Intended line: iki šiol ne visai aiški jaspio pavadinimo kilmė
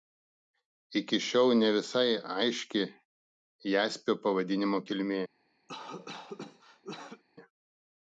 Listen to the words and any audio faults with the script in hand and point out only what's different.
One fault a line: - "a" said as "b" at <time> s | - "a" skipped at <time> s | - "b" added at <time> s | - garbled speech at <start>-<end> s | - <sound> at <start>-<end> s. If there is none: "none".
- cough at 5.7-7.2 s